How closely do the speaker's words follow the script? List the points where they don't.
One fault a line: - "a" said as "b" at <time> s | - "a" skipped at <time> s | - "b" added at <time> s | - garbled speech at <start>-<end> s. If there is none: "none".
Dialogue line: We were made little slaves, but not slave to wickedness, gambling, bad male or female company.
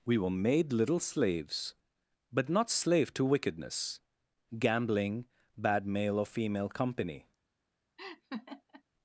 none